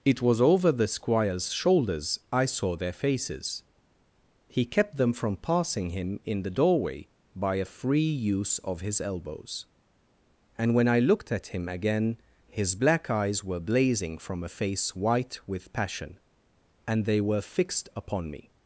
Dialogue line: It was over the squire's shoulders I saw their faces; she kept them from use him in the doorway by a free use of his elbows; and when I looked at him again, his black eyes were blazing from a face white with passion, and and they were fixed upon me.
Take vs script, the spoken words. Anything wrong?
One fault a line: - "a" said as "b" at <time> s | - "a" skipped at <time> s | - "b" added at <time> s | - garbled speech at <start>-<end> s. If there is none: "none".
- "she" said as "he" at 4.5 s
- "use" said as "passing" at 5.4 s
- "and" skipped at 17.1 s